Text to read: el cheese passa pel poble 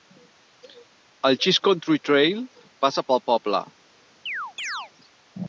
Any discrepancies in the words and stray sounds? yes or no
yes